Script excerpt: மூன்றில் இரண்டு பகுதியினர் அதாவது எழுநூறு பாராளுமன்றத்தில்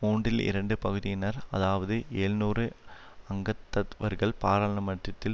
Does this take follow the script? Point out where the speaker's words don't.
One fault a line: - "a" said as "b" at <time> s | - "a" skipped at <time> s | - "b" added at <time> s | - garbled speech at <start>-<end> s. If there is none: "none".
- "அங்கத்தவர்கள்" added at 3.3 s